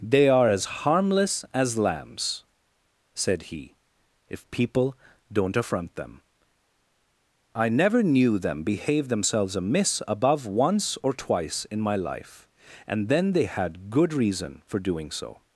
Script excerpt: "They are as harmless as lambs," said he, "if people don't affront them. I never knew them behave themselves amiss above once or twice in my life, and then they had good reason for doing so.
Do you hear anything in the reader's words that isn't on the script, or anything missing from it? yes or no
no